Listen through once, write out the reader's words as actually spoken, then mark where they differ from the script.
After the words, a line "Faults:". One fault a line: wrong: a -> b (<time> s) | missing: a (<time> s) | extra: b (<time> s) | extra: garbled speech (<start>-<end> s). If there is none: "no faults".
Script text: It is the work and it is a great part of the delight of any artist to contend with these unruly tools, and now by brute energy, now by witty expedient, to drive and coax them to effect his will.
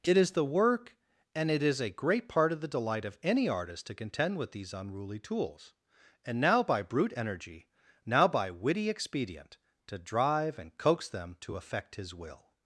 It is the work and it is a great part of the delight of any artist to contend with these unruly tools, and now by brute energy, now by witty expedient, to drive and coax them to effect his will.
Faults:
no faults